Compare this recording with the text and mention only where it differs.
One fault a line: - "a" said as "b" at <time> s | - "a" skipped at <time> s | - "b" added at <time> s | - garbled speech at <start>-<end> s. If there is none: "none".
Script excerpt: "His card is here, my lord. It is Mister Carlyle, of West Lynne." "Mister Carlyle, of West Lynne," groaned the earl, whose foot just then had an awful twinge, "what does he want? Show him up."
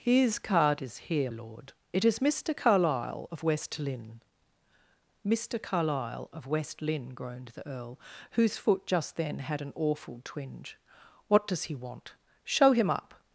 - "my" skipped at 1.3 s